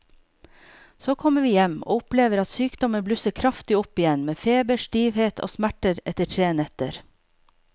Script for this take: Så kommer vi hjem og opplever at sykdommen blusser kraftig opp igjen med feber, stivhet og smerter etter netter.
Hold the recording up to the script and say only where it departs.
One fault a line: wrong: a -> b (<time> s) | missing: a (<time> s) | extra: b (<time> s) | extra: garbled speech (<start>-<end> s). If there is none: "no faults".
extra: tre (6.4 s)